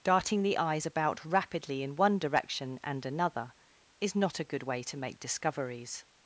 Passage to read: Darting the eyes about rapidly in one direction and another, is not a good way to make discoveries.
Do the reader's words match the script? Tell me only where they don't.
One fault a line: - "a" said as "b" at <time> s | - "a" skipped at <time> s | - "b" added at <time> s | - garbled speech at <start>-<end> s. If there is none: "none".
none